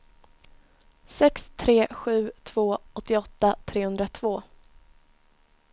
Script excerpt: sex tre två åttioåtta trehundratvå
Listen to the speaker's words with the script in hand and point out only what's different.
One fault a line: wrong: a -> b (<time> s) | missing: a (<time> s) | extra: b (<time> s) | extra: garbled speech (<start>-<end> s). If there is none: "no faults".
extra: sju (1.9 s)